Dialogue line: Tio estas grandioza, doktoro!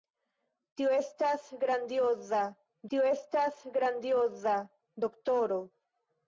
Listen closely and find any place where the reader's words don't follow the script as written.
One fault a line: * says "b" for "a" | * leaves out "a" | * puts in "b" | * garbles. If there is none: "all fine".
* puts in "tio estas grandioza"